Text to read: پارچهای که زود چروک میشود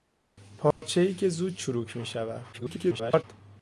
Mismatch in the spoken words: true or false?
true